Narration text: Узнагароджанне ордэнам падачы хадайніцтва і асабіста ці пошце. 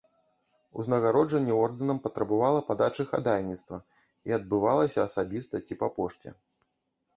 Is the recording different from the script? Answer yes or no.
yes